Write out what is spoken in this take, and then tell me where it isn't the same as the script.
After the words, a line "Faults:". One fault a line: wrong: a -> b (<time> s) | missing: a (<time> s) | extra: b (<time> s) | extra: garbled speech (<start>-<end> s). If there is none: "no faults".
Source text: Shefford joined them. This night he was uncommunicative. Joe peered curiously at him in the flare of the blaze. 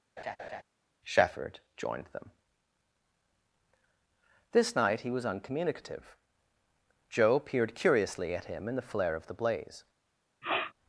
Shefford joined them. This night he was uncommunicative. Joe peered curiously at him in the flare of the blaze.
Faults:
no faults